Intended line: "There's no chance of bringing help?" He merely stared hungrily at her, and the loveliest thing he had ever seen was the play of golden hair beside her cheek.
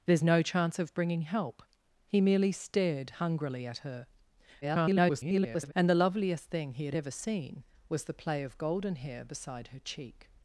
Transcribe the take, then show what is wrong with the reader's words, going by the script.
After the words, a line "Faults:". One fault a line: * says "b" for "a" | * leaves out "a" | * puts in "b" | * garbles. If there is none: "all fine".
"There's no chance of bringing help?" He merely stared hungrily at her, [garbled] and the loveliest thing he had ever seen was the play of golden hair beside her cheek.
Faults:
* garbles